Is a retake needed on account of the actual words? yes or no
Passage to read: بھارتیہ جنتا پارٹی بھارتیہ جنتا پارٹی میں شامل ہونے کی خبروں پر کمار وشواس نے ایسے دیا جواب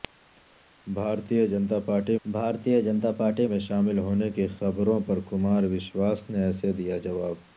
no